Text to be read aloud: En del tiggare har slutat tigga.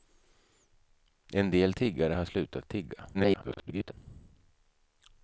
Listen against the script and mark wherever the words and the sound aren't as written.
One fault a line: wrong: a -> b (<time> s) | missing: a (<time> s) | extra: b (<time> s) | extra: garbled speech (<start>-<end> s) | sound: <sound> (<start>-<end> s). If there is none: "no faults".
extra: garbled speech (3.1-3.9 s)